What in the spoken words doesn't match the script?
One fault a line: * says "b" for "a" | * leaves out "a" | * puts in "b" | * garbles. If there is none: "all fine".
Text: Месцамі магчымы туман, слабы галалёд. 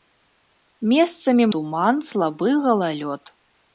* leaves out "магчымы"